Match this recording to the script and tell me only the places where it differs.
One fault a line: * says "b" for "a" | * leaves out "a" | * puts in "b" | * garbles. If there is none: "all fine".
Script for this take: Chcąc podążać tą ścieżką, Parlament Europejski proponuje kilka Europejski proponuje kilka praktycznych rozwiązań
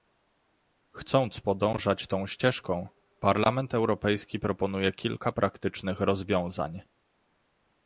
* leaves out "Europejski proponuje kilka"